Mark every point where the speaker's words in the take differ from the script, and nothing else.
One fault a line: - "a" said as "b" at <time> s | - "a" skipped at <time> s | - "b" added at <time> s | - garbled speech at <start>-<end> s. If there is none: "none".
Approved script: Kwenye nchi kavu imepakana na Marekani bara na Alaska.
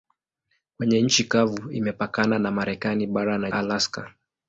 none